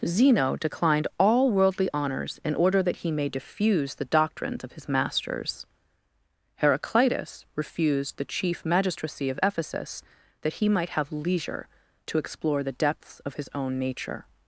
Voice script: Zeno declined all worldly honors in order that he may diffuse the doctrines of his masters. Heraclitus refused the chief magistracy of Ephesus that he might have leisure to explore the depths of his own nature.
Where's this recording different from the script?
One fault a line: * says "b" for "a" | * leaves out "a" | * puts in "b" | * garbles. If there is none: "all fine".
all fine